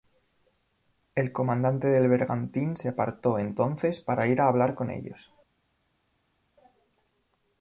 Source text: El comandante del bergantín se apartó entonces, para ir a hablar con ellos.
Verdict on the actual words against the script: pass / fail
pass